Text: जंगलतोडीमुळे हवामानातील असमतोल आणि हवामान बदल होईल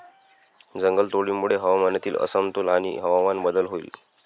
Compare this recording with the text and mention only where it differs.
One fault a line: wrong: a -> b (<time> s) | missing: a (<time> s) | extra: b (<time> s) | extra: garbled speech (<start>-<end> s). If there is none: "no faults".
no faults